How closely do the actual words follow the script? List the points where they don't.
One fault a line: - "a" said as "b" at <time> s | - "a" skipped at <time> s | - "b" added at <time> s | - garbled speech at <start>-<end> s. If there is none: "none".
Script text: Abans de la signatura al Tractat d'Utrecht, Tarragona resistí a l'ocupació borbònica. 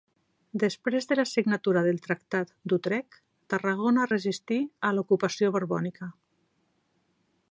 - "Abans" said as "Després" at 0.6 s
- "al" said as "del" at 1.9 s